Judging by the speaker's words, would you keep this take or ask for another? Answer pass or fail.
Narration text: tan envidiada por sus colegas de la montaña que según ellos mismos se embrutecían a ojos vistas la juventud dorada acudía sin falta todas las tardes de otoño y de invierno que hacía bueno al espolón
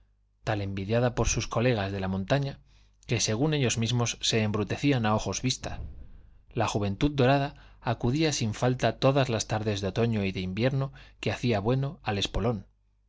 pass